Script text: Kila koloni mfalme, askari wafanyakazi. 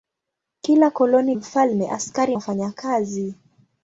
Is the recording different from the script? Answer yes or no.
no